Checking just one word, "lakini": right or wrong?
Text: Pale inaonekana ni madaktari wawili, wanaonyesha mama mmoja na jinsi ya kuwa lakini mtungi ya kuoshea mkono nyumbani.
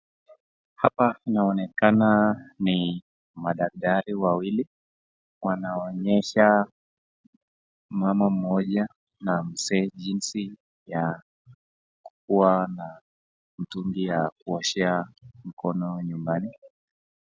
wrong